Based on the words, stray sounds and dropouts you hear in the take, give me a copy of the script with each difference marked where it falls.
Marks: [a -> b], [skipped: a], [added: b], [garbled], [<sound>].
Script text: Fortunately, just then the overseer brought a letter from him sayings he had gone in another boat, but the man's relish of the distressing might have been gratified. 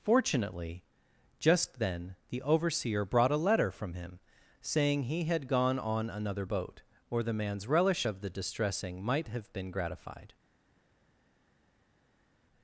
Fortunately, just then the overseer brought a letter from him [sayings -> saying] he had gone [in -> on] another boat, [but -> or] the man's relish of the distressing might have been gratified.